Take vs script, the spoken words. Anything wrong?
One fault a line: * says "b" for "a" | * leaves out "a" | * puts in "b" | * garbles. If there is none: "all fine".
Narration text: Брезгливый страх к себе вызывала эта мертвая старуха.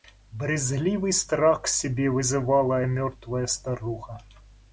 * leaves out "эта"